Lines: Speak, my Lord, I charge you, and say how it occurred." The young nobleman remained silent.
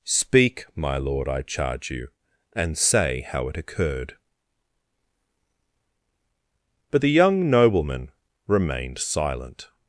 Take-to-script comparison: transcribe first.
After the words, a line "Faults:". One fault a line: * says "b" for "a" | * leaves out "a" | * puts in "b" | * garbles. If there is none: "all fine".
Speak, my Lord, I charge you, and say how it occurred." But the young nobleman remained silent.
Faults:
* puts in "But"